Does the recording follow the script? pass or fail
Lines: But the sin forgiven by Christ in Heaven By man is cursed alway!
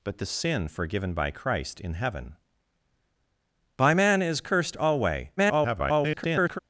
fail